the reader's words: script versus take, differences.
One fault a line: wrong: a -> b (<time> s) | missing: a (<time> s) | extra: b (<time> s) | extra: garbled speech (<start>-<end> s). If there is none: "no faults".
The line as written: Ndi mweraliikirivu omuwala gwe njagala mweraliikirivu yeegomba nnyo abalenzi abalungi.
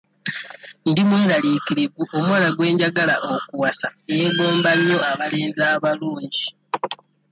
wrong: mweraliikirivu -> okuwasa (3.3 s)